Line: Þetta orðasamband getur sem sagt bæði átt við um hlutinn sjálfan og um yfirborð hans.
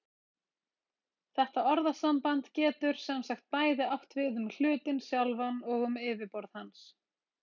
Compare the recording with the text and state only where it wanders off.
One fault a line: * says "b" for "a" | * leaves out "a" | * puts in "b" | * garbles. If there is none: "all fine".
all fine